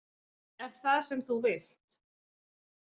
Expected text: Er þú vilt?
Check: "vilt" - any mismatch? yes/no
no